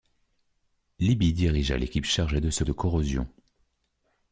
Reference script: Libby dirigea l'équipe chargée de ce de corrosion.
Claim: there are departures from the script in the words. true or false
false